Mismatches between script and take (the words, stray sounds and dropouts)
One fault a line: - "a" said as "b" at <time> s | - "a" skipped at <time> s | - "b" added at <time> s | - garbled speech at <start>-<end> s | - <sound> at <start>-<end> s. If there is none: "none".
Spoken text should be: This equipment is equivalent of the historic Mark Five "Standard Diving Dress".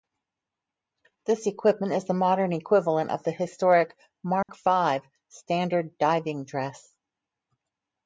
- "the modern" added at 2.0 s
- dropout at 4.4-4.5 s